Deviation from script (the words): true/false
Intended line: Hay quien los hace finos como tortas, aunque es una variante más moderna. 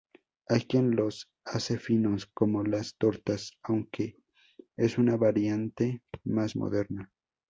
true